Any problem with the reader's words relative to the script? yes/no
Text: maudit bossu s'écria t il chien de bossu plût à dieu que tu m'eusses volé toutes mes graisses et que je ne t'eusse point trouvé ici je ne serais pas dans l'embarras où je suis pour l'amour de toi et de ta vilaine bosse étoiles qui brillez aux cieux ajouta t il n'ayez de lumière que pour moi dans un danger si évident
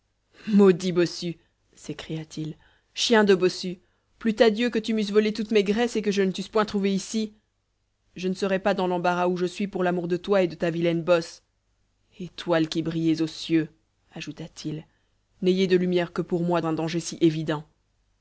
yes